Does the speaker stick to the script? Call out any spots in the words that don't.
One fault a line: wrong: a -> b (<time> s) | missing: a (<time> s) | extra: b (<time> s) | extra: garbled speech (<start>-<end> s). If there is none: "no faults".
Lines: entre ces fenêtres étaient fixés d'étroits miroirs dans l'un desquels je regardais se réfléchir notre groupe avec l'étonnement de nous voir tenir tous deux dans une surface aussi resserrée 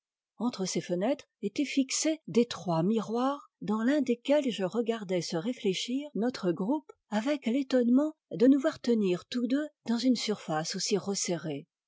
no faults